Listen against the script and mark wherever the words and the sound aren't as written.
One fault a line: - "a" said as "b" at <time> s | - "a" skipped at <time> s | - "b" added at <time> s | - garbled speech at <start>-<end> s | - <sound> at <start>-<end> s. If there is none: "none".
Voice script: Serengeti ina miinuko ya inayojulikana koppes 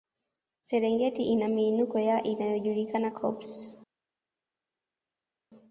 none